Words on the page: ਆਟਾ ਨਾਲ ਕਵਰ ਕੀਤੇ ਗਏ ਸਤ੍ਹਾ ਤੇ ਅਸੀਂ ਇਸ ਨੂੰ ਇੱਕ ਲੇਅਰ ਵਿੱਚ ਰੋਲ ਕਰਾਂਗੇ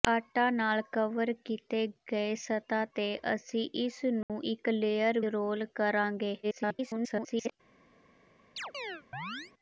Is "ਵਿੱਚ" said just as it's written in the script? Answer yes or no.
no